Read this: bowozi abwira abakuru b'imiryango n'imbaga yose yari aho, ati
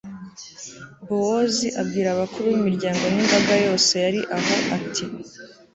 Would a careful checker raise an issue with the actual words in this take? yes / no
no